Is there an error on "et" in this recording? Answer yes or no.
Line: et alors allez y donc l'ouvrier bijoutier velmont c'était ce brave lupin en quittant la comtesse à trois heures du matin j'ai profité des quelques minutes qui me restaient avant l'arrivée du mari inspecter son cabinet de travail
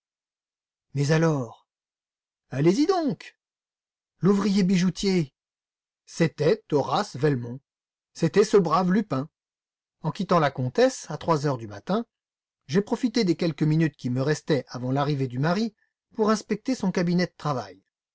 yes